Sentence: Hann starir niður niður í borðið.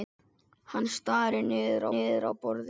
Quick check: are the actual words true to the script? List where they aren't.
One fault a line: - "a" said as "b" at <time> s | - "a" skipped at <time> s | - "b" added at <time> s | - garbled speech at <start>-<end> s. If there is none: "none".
none